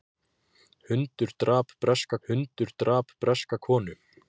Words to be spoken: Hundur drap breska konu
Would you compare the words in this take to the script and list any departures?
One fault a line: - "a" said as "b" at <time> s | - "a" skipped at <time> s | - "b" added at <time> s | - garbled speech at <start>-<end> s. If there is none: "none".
- "hundur drap breska" added at 2.3 s